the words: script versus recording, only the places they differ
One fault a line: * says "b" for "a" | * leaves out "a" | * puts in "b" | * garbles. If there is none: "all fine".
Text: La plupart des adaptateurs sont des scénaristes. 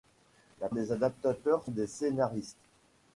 * leaves out "plupart"
* leaves out "sont"